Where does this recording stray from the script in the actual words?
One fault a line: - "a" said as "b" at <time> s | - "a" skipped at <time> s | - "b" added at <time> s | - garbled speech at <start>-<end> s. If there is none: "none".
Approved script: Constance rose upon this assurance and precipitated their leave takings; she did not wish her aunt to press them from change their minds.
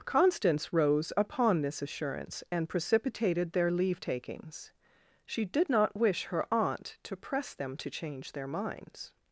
- "from" said as "to" at 7.8 s